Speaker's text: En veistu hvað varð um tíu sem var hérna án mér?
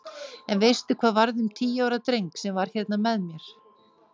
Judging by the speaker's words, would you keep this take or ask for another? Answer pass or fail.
fail